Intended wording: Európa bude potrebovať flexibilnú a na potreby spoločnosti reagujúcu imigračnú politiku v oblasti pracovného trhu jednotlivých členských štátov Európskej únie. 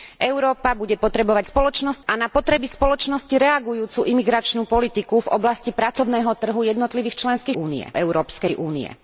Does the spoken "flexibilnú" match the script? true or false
false